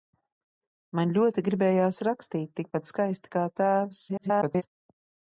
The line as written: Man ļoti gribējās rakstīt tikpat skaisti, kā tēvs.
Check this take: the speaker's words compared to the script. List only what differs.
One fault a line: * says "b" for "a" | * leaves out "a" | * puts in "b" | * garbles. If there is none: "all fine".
* garbles